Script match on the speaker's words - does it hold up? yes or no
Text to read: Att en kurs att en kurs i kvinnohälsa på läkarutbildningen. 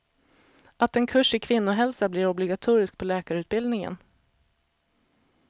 no